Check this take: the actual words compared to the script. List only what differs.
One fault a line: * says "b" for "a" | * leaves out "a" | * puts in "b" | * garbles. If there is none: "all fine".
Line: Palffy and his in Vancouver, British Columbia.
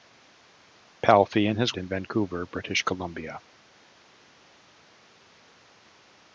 all fine